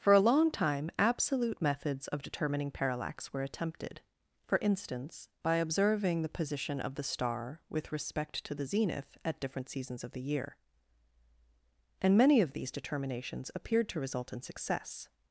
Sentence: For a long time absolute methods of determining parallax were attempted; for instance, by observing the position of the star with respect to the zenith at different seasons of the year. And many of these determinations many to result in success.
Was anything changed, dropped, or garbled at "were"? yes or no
no